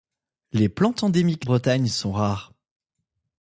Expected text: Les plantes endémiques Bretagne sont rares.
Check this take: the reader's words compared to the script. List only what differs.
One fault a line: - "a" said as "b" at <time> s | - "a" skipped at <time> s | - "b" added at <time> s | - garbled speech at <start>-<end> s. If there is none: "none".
none